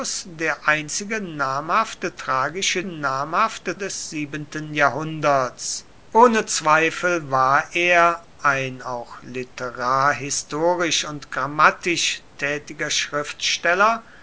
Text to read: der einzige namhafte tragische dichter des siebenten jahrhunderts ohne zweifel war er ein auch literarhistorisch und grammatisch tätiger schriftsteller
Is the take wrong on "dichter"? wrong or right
wrong